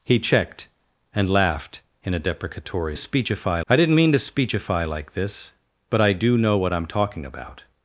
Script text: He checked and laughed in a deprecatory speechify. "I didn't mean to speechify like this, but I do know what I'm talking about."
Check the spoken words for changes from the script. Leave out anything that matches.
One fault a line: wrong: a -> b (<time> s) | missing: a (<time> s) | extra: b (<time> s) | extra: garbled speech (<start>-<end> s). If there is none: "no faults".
no faults